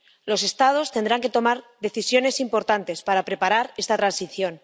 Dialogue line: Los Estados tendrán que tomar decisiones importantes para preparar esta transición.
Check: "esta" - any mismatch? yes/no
no